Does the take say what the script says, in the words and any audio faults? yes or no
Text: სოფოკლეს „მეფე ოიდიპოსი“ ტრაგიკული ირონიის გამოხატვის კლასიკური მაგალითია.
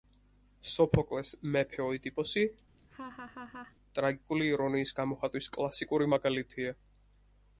no